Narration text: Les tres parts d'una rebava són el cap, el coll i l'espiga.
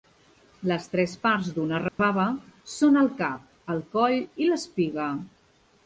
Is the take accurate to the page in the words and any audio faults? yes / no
no